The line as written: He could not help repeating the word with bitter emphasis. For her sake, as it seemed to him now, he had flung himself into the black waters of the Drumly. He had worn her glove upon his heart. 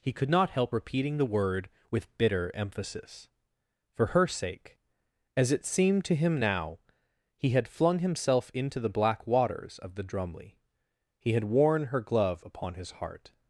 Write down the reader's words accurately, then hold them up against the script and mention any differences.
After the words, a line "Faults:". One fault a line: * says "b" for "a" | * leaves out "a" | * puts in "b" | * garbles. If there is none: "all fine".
He could not help repeating the word with bitter emphasis. For her sake, as it seemed to him now, he had flung himself into the black waters of the Drumly. He had worn her glove upon his heart.
Faults:
all fine